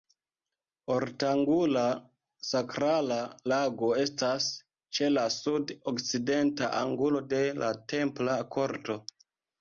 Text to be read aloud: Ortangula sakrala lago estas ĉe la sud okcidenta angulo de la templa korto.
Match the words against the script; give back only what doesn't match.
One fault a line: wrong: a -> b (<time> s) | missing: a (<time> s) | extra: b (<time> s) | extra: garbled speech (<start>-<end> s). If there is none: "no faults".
no faults